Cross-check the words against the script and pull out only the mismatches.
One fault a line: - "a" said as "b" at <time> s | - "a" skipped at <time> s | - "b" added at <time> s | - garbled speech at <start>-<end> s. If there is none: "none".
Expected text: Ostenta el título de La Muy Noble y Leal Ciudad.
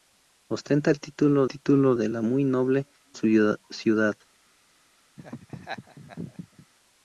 - "título" added at 1.5 s
- "y Leal" skipped at 2.9 s